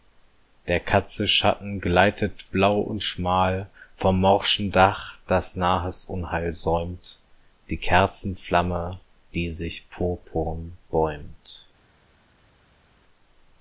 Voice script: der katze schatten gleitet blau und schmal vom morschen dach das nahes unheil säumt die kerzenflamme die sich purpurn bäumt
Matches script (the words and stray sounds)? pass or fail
pass